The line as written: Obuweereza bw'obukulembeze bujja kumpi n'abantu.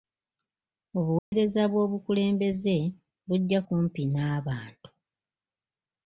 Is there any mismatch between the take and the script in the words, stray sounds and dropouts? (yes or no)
yes